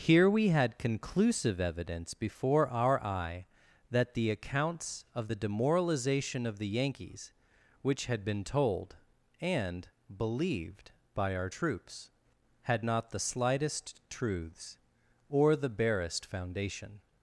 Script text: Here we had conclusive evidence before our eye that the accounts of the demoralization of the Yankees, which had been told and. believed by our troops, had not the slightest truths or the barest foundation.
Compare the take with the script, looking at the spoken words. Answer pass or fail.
pass